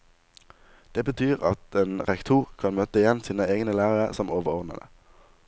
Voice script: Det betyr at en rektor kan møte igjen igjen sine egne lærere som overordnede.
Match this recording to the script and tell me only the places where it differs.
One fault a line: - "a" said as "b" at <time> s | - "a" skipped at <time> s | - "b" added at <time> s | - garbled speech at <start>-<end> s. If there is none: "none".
- "igjen" skipped at 3.2 s